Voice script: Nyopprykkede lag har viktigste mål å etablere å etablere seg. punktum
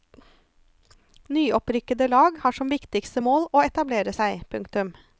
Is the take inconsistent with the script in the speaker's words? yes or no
yes